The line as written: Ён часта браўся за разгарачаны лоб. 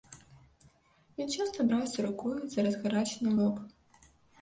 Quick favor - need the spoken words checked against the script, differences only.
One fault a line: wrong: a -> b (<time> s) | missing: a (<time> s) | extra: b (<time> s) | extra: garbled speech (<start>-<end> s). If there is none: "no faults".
extra: рукою (2.1 s)